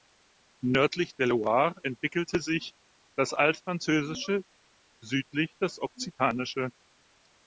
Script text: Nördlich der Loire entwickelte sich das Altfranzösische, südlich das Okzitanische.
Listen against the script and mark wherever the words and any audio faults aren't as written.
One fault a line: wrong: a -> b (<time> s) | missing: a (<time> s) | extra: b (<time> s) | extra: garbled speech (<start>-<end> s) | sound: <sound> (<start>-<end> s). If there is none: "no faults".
no faults